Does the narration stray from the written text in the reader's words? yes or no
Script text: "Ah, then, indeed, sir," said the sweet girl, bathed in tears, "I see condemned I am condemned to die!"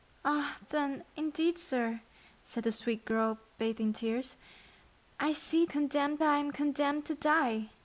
no